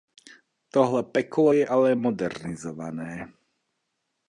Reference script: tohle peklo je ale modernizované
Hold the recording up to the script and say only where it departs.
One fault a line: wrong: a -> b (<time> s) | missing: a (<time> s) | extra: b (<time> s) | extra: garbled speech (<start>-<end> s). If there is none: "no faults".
no faults